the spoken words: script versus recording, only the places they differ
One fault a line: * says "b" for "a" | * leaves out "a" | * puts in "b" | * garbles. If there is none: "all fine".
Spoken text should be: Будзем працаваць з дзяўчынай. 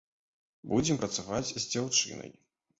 all fine